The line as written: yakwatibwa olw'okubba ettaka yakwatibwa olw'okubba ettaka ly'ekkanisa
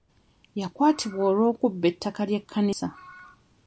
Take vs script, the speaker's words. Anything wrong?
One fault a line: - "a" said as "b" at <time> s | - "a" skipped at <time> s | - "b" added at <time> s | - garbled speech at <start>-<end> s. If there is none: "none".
- "yakwatibwa olw'okubba ettaka" skipped at 2.2 s